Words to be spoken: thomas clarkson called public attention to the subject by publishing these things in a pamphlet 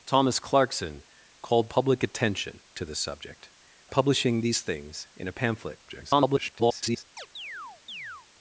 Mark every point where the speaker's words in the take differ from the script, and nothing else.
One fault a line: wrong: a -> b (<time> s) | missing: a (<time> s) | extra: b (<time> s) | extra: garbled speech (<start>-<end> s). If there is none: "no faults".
missing: by (3.5 s)
extra: garbled speech (5.9-7.0 s)